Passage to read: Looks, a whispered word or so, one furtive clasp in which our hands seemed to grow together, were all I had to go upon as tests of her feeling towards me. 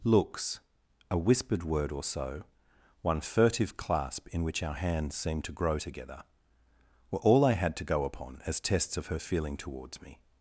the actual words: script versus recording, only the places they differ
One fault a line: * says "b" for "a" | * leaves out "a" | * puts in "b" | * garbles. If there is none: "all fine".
all fine